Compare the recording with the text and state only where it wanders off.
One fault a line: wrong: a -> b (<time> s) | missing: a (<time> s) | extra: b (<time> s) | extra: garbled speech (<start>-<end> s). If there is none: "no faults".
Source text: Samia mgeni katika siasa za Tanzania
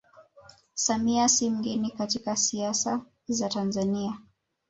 extra: si (1.3 s)